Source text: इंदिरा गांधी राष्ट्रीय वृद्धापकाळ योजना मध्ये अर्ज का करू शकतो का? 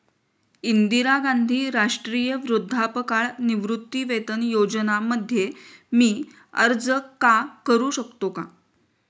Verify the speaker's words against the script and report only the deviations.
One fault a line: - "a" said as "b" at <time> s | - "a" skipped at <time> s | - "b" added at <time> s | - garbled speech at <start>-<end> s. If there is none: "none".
- "निवृत्तीवेतन" added at 3.4 s
- "मी" added at 5.9 s